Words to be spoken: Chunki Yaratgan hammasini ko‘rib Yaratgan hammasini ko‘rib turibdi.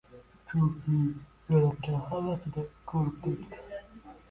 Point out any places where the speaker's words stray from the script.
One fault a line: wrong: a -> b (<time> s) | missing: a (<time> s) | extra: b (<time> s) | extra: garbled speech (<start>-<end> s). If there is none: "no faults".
missing: Yaratgan hammasini ko‘rib (3.2 s)